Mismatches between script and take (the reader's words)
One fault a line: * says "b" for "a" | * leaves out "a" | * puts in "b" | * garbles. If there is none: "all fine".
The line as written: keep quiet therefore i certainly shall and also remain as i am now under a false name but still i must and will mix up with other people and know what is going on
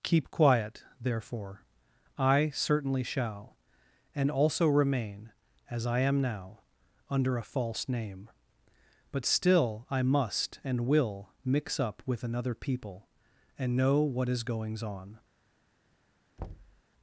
* says "another" for "other"
* says "goings" for "going"